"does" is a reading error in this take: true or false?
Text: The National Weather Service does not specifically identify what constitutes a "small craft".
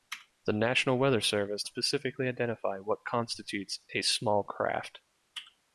true